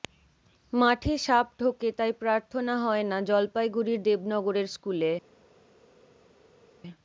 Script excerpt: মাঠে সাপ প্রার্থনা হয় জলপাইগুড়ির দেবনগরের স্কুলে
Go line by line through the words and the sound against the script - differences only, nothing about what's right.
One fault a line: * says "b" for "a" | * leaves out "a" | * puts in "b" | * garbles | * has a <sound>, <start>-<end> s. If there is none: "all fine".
* puts in "ঢোকে তাই"
* puts in "না"